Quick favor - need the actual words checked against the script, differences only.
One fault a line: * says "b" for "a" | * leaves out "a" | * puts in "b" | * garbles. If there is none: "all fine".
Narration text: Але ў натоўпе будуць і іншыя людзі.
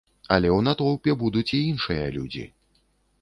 all fine